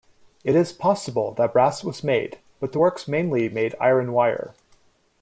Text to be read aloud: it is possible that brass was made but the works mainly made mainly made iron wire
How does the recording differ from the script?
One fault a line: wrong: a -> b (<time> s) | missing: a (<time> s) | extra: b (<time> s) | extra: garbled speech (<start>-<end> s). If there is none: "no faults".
missing: mainly made (3.8 s)